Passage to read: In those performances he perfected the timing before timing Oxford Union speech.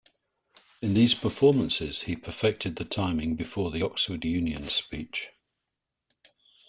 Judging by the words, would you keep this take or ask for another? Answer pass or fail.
fail